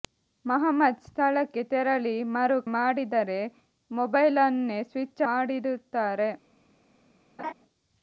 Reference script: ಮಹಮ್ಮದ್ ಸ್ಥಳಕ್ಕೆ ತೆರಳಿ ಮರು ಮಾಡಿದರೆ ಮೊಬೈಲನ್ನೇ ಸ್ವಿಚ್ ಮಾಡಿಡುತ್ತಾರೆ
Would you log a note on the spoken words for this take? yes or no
no